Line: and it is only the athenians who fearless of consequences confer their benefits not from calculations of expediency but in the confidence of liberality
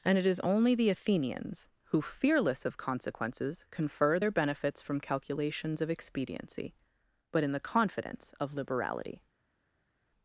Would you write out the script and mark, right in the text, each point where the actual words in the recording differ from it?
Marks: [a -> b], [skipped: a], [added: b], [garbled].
and it is only the athenians who fearless of consequences confer their benefits [skipped: not] from calculations of expediency but in the confidence of liberality